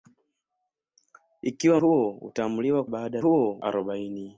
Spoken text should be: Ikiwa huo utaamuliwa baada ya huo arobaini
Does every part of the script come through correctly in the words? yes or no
yes